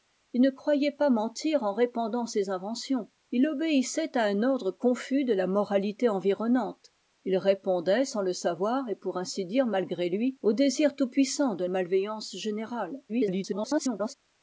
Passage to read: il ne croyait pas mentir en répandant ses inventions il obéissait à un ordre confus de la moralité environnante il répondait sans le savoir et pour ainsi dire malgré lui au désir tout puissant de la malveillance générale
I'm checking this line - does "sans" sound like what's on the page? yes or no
yes